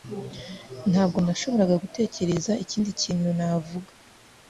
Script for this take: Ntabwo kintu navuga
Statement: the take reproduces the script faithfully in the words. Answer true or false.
false